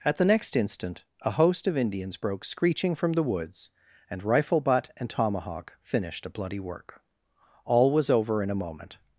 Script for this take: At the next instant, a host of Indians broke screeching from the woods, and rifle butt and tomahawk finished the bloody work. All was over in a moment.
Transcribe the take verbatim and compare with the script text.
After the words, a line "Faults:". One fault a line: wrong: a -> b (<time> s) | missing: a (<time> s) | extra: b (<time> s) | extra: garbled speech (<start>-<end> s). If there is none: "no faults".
At the next instant, a host of Indians broke screeching from the woods, and rifle butt and tomahawk finished a bloody work. All was over in a moment.
Faults:
wrong: the -> a (6.2 s)